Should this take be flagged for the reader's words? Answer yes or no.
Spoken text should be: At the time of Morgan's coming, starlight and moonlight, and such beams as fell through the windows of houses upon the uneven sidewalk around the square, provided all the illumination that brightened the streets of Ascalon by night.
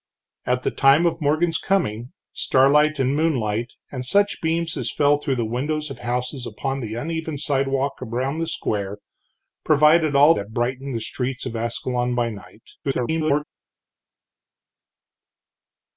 yes